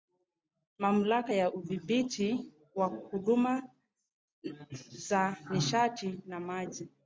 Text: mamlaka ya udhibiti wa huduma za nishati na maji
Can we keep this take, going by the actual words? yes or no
yes